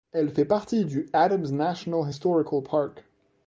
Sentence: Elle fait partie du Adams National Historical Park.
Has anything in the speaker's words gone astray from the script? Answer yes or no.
no